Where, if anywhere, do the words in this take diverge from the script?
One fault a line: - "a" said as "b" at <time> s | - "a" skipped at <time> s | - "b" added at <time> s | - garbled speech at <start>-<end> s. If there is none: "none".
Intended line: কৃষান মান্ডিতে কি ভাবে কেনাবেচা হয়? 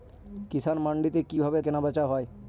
none